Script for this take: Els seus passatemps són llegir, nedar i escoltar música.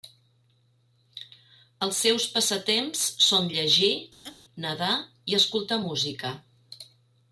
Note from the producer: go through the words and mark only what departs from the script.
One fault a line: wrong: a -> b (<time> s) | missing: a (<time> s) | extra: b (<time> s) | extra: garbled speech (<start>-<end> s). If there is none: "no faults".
no faults